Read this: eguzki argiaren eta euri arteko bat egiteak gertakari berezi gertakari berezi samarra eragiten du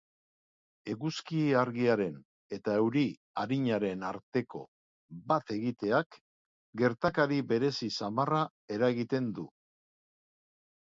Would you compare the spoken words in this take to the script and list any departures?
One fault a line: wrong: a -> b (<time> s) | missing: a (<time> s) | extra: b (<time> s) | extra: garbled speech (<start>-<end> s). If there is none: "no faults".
extra: arinaren (3.4 s)
missing: gertakari berezi (7.9 s)